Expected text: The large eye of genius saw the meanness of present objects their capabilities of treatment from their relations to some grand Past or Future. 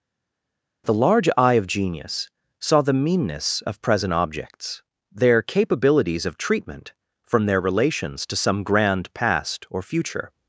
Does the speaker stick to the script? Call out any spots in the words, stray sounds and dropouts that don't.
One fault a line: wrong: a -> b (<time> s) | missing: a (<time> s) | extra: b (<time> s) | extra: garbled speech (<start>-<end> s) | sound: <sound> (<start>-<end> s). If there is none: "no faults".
no faults